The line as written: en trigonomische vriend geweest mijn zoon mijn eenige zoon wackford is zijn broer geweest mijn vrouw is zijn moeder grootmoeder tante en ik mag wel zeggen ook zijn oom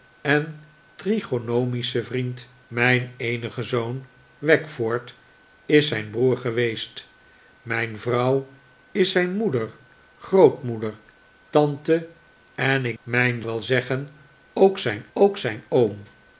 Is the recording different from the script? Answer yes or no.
yes